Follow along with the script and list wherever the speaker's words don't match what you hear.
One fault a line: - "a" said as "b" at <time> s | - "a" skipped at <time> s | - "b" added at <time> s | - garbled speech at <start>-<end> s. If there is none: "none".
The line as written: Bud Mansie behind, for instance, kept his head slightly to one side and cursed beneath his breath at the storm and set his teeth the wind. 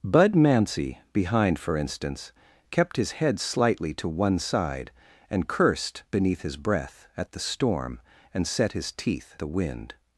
none